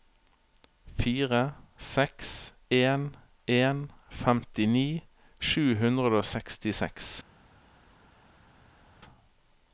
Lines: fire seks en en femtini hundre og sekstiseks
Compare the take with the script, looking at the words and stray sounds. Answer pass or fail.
fail